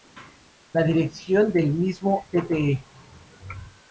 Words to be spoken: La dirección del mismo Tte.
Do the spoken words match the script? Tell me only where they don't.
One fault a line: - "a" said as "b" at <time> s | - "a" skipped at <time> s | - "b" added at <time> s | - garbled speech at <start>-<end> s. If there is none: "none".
none